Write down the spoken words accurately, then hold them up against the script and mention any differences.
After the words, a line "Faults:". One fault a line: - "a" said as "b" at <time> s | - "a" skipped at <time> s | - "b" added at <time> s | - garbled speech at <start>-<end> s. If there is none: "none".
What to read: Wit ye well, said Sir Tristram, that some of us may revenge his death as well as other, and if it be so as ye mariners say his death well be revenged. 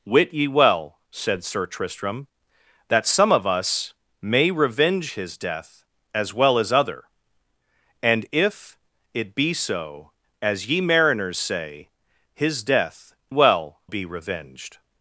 Wit ye well, said Sir Tristram, that some of us may revenge his death as well as other, and if it be so as ye mariners say his death well be revenged.
Faults:
none